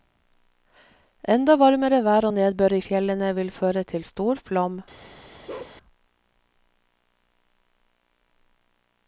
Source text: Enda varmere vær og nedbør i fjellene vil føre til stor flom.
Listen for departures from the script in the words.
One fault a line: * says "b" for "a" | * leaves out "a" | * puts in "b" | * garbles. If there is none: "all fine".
all fine